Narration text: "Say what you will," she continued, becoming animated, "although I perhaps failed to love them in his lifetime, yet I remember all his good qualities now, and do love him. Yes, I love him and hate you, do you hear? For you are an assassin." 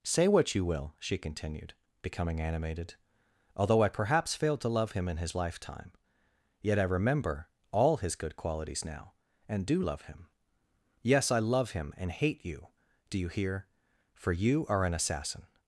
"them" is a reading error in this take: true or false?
true